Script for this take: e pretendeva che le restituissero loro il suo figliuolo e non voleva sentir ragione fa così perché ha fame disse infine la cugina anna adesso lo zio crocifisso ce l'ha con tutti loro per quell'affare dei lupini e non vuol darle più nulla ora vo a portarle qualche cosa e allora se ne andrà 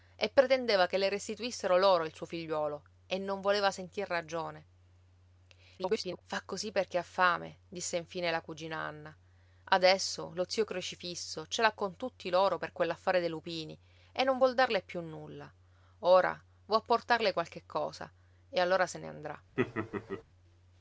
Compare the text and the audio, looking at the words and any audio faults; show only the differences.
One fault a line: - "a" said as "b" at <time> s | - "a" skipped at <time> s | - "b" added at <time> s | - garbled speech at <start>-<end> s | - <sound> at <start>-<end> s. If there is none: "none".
- garbled speech at 5.8-6.2 s
- laugh at 19.6-20.2 s